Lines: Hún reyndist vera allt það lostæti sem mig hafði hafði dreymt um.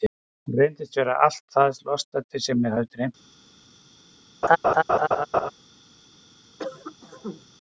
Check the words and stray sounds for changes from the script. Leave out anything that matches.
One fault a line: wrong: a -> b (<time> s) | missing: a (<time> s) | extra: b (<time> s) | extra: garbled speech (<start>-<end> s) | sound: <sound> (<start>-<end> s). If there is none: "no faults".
missing: hafði (2.9 s)
sound: laugh (4.4-5.5 s)
sound: cough (6.6-7.5 s)